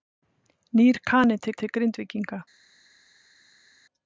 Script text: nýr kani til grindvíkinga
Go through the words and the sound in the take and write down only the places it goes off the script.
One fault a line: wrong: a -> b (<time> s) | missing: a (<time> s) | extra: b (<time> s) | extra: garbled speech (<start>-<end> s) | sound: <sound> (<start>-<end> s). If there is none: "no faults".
extra: til (1.6 s)